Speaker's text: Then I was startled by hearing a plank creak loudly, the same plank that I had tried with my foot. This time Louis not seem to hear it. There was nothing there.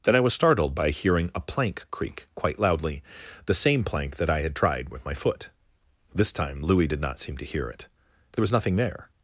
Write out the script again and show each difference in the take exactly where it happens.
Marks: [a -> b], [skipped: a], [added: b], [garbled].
Then I was startled by hearing a plank creak [added: quite] loudly, the same plank that I had tried with my foot. This time Louis [added: did] not seem to hear it. There was nothing there.